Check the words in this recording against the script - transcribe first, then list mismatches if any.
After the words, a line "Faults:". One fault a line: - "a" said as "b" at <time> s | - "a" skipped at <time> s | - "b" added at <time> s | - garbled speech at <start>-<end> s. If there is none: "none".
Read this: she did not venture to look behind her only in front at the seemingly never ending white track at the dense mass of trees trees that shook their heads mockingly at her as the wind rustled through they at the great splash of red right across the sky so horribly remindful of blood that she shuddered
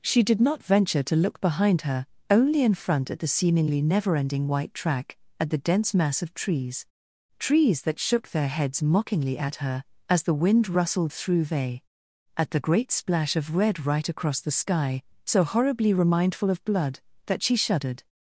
she did not venture to look behind her only in front at the seemingly never ending white track at the dense mass of trees trees that shook their heads mockingly at her as the wind rustled through they at the great splash of red right across the sky so horribly remindful of blood that she shuddered
Faults:
none